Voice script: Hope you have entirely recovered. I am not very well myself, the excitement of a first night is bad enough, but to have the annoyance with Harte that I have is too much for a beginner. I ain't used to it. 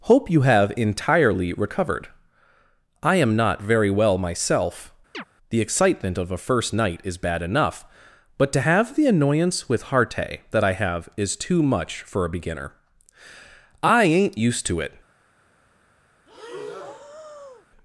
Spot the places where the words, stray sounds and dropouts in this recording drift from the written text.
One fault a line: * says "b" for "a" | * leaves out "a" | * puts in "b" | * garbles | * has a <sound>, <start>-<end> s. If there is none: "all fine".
* has a chirp, 5.1-5.2 s
* has a breath, 16.3-17.7 s